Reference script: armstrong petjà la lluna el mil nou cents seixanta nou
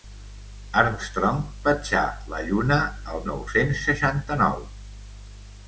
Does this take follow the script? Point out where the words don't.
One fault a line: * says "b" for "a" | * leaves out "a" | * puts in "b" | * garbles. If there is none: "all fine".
* leaves out "mil"